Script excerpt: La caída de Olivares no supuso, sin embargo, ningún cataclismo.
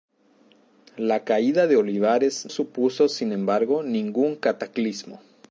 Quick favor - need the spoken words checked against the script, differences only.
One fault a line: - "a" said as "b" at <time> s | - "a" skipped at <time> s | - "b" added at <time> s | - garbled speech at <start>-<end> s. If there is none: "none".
- "no" skipped at 2.5 s